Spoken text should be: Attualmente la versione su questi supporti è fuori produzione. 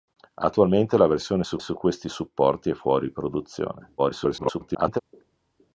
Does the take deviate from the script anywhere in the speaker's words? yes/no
yes